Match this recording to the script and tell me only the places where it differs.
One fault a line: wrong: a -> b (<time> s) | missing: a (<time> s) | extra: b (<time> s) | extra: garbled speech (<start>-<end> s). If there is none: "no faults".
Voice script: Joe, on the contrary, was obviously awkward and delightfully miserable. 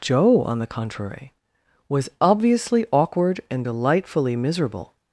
no faults